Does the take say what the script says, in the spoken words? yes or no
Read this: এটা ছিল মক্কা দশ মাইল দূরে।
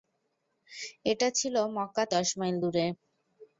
yes